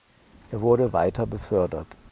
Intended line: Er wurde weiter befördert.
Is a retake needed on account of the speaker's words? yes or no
no